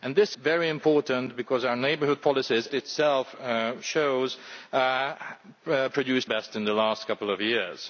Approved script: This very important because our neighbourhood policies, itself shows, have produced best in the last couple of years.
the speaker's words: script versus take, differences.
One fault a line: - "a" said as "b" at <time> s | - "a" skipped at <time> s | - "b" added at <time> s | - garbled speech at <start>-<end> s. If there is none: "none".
none